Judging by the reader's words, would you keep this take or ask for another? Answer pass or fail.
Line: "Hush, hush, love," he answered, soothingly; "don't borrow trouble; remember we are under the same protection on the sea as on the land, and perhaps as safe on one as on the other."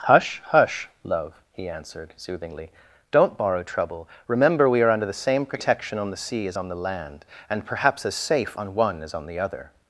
pass